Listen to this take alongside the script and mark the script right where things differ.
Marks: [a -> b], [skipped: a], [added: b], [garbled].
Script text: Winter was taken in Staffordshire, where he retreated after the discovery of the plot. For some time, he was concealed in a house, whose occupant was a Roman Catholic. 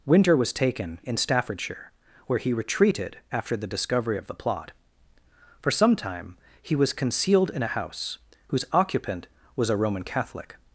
Winter was taken in Staffordshire, where he retreated after the discovery of the plot. For some time, he was concealed in a house, whose occupant was a Roman Catholic.